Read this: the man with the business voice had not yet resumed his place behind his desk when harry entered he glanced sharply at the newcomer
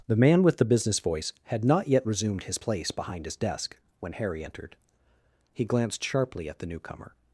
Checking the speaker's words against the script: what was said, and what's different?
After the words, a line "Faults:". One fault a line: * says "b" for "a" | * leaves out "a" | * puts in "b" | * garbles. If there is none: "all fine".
the man with the business voice had not yet resumed his place behind his desk when harry entered he glanced sharply at the newcomer
Faults:
all fine